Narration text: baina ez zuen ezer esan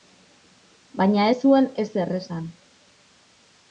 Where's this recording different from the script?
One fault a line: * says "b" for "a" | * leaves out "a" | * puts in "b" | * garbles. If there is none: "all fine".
all fine